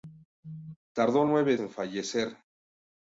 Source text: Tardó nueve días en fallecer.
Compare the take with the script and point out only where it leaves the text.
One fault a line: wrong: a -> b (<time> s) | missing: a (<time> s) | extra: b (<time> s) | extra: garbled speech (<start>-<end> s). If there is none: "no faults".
missing: días (1.6 s)